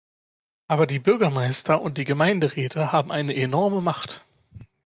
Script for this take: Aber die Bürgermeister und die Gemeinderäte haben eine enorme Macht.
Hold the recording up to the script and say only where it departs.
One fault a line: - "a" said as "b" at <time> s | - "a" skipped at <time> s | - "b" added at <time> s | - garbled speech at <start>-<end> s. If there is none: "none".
none